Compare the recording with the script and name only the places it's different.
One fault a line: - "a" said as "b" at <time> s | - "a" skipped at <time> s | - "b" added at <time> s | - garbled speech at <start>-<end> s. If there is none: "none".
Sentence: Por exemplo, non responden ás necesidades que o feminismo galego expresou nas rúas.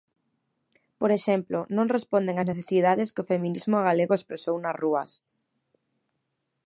none